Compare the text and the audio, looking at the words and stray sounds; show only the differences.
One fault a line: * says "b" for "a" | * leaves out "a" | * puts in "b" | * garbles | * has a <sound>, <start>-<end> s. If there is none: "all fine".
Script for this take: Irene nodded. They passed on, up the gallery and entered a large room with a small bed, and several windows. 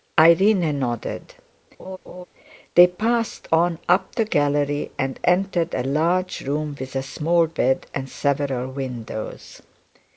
* has a laugh, 1.8-2.2 s